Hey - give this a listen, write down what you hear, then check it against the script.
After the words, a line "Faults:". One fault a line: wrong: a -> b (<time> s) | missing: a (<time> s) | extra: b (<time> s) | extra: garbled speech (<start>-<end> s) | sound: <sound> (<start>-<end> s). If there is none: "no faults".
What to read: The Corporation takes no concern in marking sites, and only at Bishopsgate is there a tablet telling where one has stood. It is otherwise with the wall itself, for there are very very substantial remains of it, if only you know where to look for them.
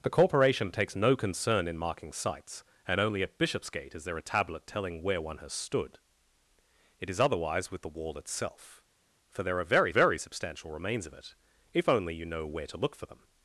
The Corporation takes no concern in marking sites, and only at Bishopsgate is there a tablet telling where one has stood. It is otherwise with the wall itself, for there are very very substantial remains of it, if only you know where to look for them.
Faults:
no faults